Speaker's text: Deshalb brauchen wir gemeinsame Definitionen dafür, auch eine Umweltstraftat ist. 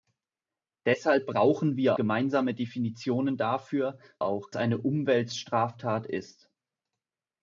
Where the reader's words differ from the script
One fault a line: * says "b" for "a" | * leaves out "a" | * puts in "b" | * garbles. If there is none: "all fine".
all fine